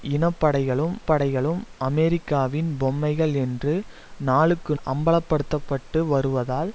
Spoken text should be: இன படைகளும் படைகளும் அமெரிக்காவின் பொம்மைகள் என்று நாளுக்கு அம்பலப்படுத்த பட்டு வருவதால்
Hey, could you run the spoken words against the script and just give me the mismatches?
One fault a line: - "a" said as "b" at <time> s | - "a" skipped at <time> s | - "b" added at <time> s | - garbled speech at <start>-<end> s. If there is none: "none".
none